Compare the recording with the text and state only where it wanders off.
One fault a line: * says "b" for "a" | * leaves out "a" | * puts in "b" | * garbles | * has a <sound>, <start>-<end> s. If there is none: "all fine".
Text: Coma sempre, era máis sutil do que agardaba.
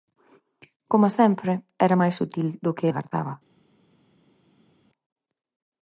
all fine